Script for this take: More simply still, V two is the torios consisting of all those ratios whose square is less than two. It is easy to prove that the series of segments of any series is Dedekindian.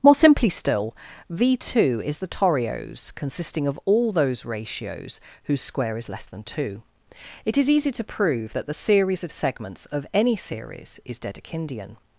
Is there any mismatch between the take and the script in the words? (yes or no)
no